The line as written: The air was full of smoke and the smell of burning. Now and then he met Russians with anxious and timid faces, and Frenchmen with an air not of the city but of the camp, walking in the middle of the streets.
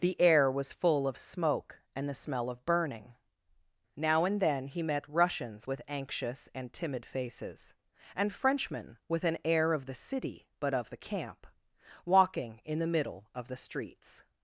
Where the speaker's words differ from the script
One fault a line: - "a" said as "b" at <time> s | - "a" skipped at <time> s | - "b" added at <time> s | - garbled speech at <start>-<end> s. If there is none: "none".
- "not" skipped at 9.7 s